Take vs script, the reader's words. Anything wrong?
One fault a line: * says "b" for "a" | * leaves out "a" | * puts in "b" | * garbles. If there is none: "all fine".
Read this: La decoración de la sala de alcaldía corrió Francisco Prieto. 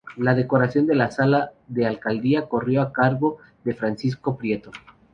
* puts in "a cargo de"